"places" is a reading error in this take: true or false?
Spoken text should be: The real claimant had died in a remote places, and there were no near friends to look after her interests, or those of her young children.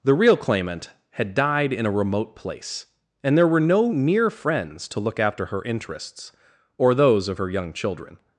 true